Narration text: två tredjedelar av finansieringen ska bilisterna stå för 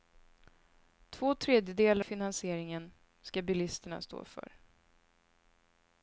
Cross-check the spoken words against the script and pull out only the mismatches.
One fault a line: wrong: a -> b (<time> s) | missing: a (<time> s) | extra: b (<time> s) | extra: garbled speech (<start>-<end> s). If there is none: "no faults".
missing: av (2.0 s)